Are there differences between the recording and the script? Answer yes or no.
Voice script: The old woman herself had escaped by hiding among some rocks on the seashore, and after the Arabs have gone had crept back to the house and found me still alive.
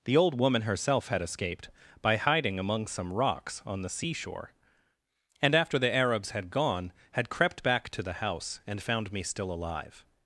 yes